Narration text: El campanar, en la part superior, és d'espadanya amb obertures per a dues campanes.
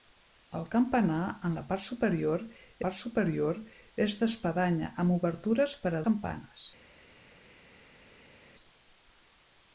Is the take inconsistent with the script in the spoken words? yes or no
yes